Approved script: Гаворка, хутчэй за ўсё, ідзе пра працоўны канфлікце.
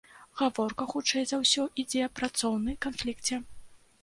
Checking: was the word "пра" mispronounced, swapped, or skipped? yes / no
yes